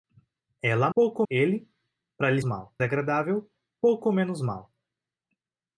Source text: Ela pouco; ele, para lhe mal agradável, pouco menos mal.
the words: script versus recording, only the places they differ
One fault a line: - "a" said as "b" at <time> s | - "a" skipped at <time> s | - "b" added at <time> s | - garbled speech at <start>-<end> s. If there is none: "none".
none